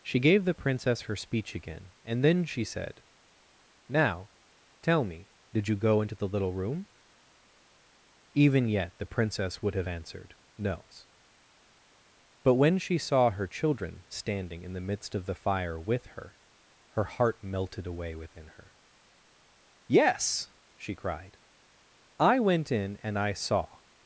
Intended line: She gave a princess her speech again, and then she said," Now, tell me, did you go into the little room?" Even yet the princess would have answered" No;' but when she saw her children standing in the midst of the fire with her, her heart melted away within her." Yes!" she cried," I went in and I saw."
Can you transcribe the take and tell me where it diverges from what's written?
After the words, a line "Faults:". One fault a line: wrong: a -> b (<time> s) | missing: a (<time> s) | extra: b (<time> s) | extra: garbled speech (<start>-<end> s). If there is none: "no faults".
She gave the princess her speech again, and then she said," Now, tell me, did you go into the little room?" Even yet the princess would have answered" No;' but when she saw her children standing in the midst of the fire with her, her heart melted away within her." Yes!" she cried," I went in and I saw."
Faults:
wrong: a -> the (0.5 s)